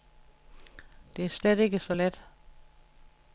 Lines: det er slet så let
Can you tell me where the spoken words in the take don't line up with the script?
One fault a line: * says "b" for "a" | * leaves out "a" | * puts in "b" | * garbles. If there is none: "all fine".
* puts in "ikke"